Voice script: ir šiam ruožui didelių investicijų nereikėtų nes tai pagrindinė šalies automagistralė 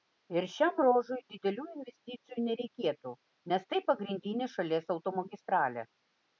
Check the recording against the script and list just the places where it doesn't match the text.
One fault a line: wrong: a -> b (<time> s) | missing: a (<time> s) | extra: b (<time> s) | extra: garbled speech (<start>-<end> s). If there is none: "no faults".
no faults